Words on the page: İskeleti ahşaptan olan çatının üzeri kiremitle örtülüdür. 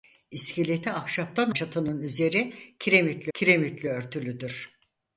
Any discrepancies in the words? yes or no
yes